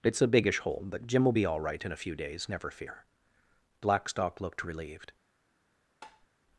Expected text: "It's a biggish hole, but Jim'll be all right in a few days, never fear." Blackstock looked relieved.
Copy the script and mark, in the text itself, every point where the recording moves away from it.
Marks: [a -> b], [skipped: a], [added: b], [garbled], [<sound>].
"It's a biggish hole, but Jim'll be all right in a few days, never fear." Blackstock looked relieved. [tap]